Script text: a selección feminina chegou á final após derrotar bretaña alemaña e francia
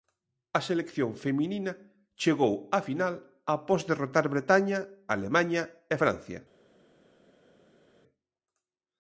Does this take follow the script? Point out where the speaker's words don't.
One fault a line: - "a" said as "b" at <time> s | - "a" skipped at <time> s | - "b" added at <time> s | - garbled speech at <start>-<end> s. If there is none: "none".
none